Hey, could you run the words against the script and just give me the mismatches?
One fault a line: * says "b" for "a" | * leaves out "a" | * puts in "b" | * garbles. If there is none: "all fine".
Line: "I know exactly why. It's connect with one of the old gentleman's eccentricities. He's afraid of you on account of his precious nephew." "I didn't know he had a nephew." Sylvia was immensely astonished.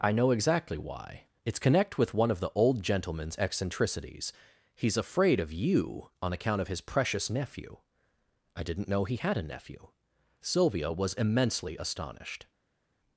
all fine